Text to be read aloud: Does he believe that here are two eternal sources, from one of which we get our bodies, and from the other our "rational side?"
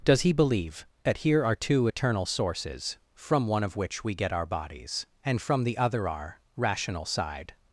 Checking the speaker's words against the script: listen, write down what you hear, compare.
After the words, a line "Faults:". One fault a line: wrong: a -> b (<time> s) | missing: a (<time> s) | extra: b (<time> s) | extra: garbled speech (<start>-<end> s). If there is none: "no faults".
Does he believe that here are two eternal sources, from one of which we get our bodies, and from the other our "rational side?"
Faults:
no faults